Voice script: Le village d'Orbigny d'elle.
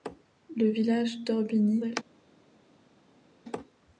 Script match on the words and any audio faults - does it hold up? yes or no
yes